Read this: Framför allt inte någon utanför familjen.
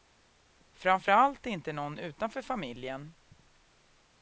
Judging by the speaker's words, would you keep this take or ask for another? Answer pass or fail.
pass